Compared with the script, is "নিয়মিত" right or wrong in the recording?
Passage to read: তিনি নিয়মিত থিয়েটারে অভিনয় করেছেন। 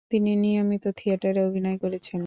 right